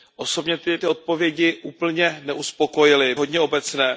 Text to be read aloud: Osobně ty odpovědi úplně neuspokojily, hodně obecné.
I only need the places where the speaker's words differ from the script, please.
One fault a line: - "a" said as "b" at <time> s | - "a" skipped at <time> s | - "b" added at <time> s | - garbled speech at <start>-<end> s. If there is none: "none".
none